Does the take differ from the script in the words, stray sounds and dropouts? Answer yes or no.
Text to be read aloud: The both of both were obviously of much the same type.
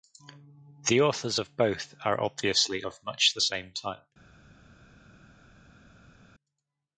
yes